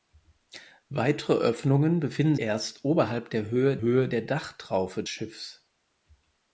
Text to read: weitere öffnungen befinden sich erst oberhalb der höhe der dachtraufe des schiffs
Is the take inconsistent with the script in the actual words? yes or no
yes